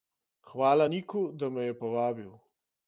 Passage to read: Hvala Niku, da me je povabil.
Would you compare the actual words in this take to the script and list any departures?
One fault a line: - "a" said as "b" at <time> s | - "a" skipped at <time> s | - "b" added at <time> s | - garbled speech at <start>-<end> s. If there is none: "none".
none